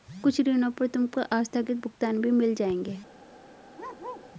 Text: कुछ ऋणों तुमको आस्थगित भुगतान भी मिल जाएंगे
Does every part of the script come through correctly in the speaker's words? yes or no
no